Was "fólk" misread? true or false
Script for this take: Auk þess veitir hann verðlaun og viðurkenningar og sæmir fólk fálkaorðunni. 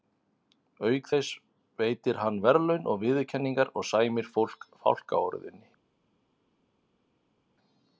false